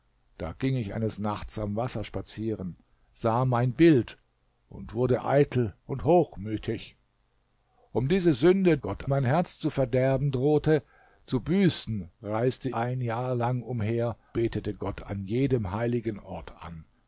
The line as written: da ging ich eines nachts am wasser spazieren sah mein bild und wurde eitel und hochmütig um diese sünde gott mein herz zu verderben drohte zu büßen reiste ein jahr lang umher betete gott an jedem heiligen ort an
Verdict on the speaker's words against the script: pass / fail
pass